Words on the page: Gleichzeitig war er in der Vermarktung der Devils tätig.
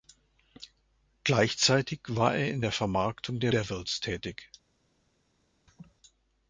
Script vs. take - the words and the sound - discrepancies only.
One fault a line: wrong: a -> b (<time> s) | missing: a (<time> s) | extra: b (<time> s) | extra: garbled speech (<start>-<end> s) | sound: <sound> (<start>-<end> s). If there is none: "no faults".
sound: laugh (5.7-6.0 s)